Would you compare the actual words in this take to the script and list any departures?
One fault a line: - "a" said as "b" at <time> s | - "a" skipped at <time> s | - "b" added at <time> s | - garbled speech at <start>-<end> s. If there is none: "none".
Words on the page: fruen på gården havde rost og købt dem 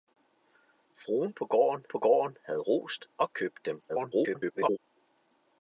- "på gården" added at 1.9 s
- garbled speech at 3.9-4.8 s